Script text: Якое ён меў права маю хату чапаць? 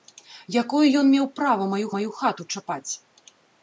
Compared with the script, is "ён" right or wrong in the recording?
right